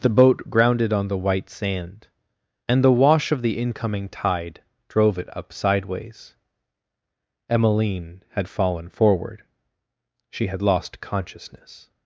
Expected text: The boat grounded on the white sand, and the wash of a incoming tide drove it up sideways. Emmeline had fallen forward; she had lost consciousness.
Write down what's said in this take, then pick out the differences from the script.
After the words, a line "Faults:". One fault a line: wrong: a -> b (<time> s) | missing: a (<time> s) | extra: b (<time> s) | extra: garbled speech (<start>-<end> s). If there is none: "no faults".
The boat grounded on the white sand, and the wash of the incoming tide drove it up sideways. Emmeline had fallen forward; she had lost consciousness.
Faults:
wrong: a -> the (3.4 s)